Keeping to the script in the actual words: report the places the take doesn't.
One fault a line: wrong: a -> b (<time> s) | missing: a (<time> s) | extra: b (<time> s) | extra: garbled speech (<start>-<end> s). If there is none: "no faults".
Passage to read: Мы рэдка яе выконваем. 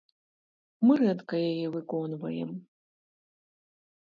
no faults